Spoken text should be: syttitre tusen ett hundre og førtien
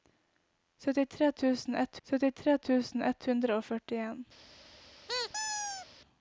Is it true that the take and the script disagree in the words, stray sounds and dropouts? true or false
true